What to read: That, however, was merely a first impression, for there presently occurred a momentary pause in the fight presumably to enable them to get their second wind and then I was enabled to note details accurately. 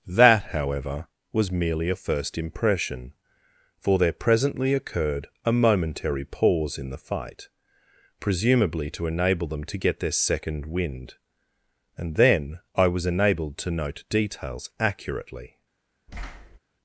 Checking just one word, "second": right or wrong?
right